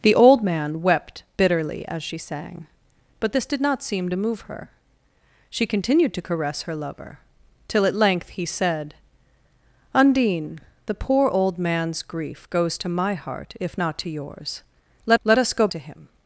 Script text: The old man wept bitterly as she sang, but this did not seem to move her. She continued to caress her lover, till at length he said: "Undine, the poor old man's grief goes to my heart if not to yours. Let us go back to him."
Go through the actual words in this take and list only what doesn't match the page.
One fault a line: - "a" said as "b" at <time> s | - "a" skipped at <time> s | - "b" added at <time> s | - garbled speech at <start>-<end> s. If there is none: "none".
- "let" added at 15.2 s
- "back" skipped at 15.7 s